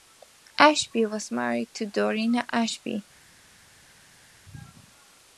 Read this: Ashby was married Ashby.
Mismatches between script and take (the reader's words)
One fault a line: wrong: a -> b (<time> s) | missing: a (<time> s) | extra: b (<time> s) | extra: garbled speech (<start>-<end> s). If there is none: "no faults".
extra: to Dorina (1.8 s)